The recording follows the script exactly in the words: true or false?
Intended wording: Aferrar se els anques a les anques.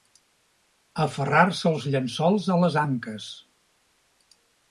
false